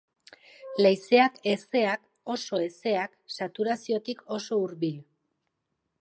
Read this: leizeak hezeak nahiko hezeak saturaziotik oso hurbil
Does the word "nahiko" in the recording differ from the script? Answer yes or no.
yes